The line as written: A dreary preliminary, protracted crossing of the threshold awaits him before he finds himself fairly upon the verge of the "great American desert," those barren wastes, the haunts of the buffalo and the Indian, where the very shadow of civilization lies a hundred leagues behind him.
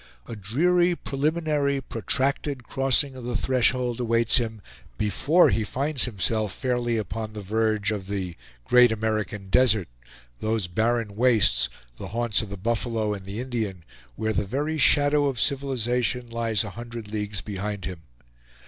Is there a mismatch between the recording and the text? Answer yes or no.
no